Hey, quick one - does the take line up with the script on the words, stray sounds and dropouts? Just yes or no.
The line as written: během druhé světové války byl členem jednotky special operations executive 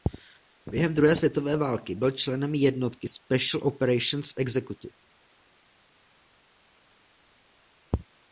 yes